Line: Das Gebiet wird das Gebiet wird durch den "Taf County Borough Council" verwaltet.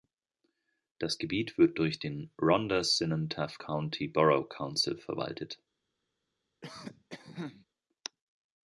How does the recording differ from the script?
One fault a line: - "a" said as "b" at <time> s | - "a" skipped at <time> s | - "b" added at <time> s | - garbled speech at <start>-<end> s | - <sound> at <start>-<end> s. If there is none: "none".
- "das Gebiet wird durch den" said as "durch den Rhondda Cynon" at 1.8 s
- cough at 6.6-7.7 s